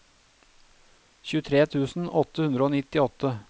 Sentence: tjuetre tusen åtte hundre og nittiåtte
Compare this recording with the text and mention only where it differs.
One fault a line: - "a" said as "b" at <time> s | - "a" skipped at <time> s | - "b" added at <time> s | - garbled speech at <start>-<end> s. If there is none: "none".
none